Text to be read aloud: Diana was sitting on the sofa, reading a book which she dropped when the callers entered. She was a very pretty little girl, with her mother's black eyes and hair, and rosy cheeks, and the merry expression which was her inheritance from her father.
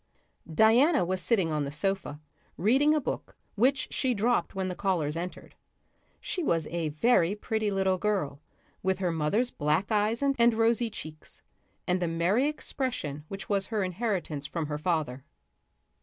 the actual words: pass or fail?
fail